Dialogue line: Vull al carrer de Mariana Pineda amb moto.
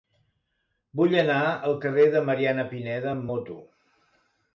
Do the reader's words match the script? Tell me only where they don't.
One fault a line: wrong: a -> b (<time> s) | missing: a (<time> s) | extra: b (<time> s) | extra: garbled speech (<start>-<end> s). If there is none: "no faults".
extra: anar (1.2 s)